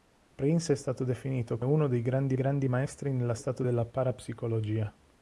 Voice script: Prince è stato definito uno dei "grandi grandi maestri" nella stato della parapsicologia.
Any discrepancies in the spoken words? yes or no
no